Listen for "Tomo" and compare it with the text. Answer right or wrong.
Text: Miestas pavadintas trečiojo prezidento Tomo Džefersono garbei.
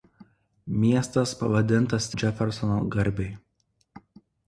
wrong